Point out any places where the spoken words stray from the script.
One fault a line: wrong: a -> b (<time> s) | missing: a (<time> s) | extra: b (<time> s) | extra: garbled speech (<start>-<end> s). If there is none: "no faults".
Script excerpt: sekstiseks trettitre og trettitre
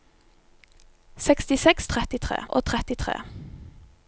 no faults